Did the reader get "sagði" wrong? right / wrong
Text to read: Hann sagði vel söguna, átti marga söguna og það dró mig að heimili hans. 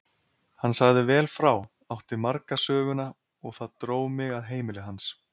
right